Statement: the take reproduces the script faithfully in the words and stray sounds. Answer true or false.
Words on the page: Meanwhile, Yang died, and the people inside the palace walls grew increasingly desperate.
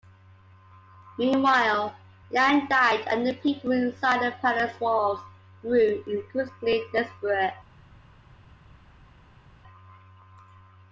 true